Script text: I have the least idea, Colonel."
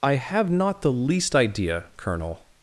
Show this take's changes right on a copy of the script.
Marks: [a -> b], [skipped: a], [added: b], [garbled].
I have [added: not] the least idea, Colonel."